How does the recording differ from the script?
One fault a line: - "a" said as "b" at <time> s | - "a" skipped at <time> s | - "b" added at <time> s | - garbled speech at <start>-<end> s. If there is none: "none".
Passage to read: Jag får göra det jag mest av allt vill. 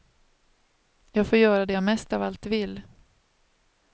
none